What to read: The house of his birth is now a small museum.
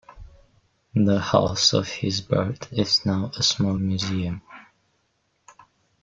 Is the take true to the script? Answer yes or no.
yes